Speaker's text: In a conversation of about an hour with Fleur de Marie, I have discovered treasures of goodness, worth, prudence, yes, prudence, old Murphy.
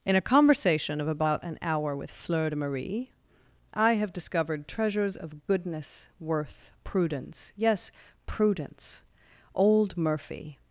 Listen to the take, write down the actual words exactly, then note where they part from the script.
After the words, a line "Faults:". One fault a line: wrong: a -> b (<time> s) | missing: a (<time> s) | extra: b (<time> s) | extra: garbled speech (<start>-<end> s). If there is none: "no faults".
In a conversation of about an hour with Fleur de Marie, I have discovered treasures of goodness, worth, prudence, yes, prudence, old Murphy.
Faults:
no faults